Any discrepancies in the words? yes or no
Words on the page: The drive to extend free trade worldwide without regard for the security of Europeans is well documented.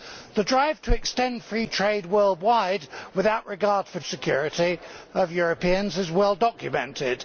no